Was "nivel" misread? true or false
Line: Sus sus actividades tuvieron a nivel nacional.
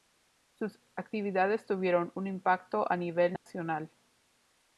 false